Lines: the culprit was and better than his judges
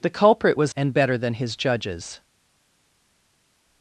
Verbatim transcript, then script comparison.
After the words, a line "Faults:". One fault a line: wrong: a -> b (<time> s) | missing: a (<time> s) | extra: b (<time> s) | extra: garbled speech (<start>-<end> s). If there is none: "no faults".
the culprit was and better than his judges
Faults:
no faults